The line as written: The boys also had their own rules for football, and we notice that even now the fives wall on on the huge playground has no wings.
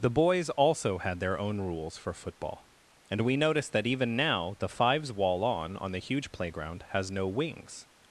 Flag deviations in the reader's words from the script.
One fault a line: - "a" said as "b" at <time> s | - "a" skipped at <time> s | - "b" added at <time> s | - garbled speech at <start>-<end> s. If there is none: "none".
none